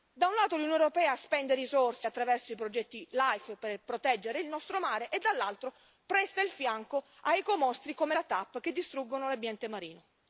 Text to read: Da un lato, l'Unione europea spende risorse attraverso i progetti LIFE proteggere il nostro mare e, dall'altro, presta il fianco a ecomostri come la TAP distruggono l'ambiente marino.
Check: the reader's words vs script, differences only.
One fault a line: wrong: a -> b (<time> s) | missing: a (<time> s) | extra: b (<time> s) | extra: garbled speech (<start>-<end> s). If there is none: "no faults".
extra: per (3.6 s)
extra: che (8.6 s)